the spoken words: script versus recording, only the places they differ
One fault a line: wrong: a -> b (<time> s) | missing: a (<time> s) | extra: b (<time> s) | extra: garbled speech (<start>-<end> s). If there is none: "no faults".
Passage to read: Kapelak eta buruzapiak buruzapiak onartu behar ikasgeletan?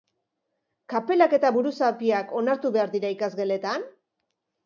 missing: buruzapiak (2.4 s)
extra: dira (3.0 s)